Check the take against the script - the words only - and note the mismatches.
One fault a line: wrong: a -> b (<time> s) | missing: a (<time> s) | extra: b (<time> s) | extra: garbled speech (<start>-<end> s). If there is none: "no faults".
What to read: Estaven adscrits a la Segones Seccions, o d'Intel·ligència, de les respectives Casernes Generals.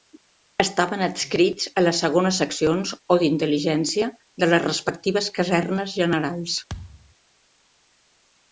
wrong: la -> les (1.8 s)